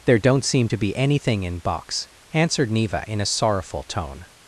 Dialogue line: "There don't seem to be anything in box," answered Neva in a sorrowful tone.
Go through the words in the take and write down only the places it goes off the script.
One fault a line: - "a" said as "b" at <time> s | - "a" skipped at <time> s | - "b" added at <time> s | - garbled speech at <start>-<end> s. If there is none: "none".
none